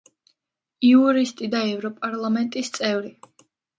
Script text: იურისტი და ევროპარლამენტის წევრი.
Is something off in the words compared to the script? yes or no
no